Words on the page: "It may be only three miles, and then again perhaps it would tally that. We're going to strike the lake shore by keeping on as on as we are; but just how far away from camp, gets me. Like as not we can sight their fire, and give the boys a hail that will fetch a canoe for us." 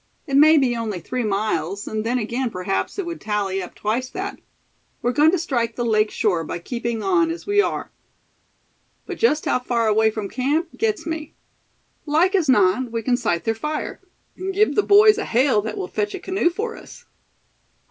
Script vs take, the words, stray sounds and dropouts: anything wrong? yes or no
yes